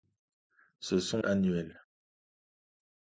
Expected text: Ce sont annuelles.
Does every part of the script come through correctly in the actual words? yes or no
yes